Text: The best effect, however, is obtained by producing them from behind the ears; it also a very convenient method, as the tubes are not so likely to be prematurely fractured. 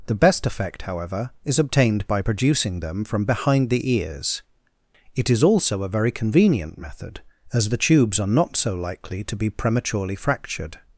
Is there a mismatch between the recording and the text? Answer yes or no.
yes